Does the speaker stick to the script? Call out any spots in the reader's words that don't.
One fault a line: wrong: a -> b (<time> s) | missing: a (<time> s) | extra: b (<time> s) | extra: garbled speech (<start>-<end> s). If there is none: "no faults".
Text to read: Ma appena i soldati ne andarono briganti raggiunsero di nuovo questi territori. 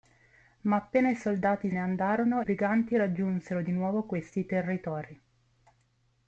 no faults